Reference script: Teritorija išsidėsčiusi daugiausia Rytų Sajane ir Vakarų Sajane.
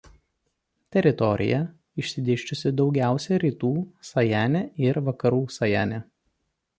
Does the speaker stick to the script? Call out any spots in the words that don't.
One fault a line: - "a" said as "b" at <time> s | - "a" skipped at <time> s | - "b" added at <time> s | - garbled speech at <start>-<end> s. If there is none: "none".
none